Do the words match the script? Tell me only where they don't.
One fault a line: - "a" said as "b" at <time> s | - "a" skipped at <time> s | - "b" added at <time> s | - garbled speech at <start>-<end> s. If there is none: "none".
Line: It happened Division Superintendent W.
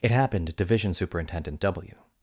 none